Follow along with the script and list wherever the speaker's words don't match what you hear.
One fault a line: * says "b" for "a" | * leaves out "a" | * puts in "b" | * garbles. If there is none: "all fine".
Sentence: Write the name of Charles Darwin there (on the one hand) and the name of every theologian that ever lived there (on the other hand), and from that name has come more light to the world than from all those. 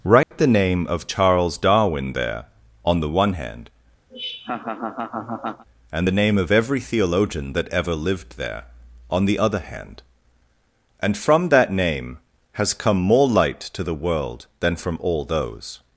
all fine